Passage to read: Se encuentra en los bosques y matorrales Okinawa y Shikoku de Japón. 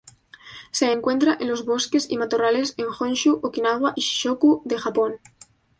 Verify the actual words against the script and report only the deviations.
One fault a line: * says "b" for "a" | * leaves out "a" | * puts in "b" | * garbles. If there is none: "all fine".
* puts in "en Honshu"